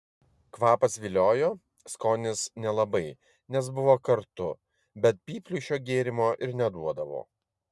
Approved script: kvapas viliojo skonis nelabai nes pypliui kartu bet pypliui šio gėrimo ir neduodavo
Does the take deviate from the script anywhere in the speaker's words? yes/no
yes